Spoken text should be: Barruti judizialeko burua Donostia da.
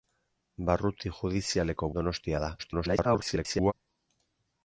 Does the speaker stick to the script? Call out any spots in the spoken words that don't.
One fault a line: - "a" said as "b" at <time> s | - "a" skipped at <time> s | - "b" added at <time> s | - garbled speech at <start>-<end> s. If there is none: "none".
- "burua" skipped at 1.9 s
- garbled speech at 2.6-3.7 s